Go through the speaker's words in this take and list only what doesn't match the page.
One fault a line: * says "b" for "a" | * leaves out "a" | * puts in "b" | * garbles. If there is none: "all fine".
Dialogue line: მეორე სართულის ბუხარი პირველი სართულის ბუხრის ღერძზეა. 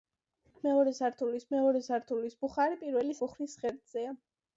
* puts in "მეორე სართულის"
* leaves out "სართულის"